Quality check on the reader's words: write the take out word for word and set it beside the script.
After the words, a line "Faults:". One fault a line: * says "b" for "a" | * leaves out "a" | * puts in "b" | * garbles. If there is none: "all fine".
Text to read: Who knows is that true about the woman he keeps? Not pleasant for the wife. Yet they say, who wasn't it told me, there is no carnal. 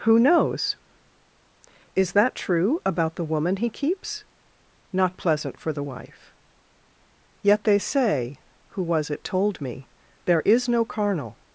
Who knows is that true about the woman he keeps? Not pleasant for the wife. Yet they say, who was it told me, there is no carnal.
Faults:
* says "was" for "wasn't"